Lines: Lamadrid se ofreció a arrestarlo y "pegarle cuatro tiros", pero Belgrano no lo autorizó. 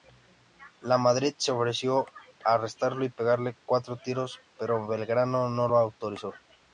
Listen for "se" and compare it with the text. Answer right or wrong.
right